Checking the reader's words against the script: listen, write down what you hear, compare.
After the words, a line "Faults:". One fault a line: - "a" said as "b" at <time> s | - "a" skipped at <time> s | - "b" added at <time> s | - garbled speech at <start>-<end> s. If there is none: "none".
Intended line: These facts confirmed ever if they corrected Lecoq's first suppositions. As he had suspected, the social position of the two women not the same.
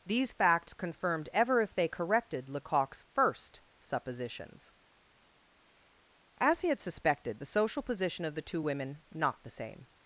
These facts confirmed ever if they corrected Lecoq's first suppositions. As he had suspected, the social position of the two women not the same.
Faults:
none